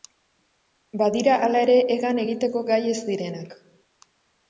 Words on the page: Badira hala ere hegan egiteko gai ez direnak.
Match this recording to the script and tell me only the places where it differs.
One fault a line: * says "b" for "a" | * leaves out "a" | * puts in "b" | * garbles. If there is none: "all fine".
all fine